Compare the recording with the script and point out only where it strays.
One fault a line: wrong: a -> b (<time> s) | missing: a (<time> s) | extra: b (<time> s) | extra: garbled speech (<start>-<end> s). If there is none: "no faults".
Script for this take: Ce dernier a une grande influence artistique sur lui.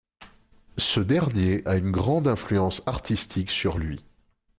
no faults